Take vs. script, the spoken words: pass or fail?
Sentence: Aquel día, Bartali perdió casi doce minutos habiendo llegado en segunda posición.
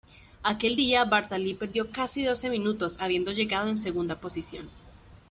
pass